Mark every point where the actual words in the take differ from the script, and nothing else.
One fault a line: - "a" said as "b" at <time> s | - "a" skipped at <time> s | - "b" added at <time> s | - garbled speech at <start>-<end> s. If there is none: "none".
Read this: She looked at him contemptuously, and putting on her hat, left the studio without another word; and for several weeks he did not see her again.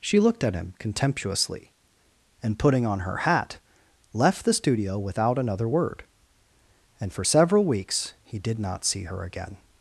none